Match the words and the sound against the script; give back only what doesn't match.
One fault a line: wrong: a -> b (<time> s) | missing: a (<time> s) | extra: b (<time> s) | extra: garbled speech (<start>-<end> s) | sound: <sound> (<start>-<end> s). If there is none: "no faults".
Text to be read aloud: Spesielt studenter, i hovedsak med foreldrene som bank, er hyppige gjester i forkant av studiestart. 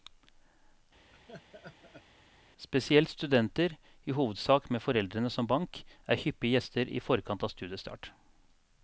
sound: laugh (1.1-2.0 s)